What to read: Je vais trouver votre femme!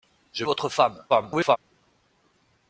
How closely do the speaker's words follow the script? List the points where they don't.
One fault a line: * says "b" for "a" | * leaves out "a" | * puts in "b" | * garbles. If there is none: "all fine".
* leaves out "vais trouver"
* garbles